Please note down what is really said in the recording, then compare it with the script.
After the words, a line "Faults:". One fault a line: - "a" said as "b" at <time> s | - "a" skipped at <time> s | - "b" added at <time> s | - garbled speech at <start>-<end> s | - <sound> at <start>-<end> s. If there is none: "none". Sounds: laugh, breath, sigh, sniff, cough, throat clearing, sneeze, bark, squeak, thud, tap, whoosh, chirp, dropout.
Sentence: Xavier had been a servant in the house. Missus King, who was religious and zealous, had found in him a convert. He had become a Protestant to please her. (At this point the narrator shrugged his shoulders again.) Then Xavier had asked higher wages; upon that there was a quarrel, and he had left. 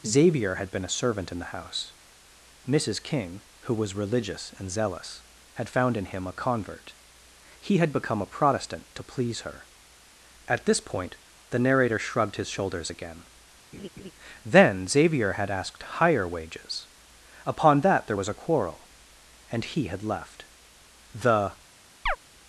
Xavier had been a servant in the house. Missus King, who was religious and zealous, had found in him a convert. He had become a Protestant to please her. (At this point the narrator shrugged his shoulders again.) Then Xavier had asked higher wages; upon that there was a quarrel, and he had left. The
Faults:
- laugh at 13.7-14.1 s
- "The" added at 21.1 s
- chirp at 22.1-22.2 s